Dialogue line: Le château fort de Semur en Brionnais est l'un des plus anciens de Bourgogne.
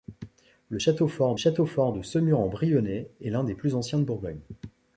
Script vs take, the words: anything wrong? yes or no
yes